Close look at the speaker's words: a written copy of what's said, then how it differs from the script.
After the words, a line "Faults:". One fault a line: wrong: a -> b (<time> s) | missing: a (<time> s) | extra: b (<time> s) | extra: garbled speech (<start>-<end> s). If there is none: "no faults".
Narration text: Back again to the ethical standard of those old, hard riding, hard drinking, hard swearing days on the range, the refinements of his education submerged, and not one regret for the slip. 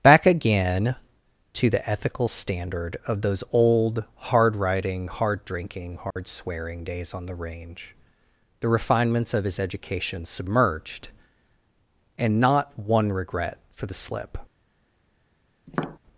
Back again to the ethical standard of those old, hard riding, hard drinking, hard swearing days on the range, the refinements of his education submerged, and not one regret for the slip.
Faults:
no faults